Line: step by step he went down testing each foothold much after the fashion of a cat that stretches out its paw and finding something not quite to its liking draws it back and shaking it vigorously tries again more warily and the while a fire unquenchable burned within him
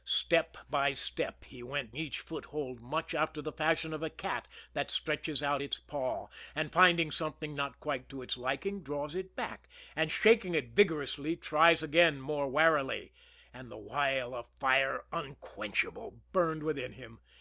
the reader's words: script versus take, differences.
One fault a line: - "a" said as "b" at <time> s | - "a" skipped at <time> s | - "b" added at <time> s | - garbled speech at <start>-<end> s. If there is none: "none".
- "down testing" skipped at 1.9 s